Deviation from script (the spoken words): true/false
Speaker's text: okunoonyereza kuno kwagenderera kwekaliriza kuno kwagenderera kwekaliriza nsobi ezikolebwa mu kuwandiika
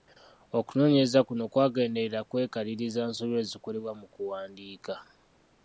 true